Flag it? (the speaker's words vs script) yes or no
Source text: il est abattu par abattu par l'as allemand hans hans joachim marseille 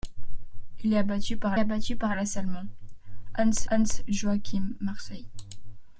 no